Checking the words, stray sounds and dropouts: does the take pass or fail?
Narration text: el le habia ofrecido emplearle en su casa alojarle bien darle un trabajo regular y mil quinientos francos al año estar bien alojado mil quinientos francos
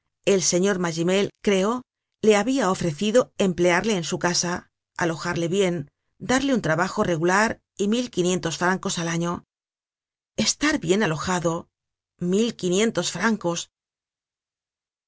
fail